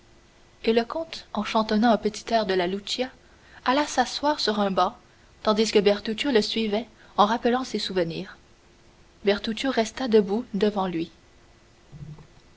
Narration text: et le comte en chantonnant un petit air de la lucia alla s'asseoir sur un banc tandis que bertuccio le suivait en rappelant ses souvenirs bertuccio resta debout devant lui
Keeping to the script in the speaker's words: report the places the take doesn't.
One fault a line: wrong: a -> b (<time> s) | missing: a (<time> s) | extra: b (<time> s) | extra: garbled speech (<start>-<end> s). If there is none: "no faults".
no faults